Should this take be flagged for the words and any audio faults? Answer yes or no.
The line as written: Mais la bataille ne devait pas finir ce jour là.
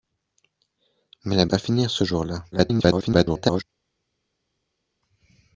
yes